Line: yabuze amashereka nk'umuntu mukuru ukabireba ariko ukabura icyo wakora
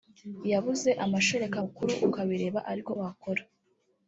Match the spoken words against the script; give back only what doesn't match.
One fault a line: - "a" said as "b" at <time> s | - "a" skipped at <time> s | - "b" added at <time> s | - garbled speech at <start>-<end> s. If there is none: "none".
- "nk'umuntu" skipped at 1.6 s
- "ukabura icyo" skipped at 2.9 s